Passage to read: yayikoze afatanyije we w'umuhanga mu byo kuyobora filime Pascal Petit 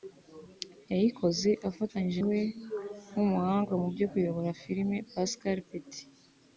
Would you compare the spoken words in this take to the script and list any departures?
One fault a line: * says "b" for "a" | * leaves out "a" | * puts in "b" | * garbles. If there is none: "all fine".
all fine